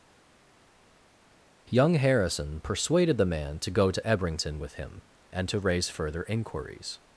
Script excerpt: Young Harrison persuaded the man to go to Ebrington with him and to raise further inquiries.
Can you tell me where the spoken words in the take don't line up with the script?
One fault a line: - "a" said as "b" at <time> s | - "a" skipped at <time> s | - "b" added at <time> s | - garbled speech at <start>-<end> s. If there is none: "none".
none